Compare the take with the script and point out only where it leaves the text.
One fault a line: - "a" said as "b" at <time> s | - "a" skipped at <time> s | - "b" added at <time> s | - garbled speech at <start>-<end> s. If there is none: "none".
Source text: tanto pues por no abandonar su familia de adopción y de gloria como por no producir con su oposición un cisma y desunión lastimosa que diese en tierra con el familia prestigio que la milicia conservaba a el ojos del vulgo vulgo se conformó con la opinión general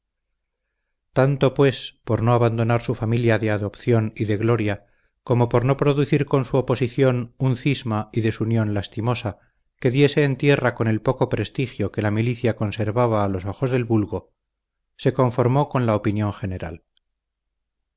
- "familia" said as "poco" at 11.0 s
- "el" said as "los" at 13.3 s
- "vulgo" skipped at 14.3 s